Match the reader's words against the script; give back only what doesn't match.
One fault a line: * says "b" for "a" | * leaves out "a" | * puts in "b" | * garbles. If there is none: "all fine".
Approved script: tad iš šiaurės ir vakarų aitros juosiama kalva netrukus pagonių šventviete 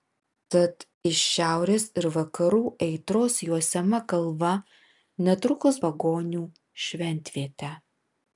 all fine